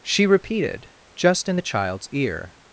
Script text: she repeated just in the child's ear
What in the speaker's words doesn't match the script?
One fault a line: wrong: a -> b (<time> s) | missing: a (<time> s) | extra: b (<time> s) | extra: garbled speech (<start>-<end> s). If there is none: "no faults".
no faults